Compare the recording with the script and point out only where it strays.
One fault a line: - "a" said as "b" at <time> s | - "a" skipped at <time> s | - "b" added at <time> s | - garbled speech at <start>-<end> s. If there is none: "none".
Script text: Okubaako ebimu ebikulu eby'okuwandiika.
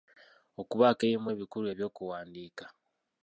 none